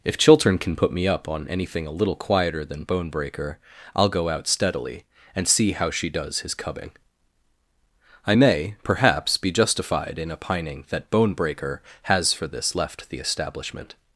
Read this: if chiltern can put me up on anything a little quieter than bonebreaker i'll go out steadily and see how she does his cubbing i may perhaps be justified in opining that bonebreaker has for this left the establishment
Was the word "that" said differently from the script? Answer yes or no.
no